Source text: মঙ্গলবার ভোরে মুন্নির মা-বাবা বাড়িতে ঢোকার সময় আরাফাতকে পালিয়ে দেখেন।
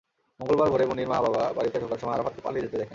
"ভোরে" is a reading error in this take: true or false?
false